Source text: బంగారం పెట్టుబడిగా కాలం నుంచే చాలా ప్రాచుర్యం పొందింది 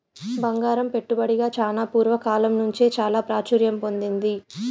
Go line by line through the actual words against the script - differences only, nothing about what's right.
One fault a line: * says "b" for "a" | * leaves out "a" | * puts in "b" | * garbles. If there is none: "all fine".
* puts in "చానా పూర్వ"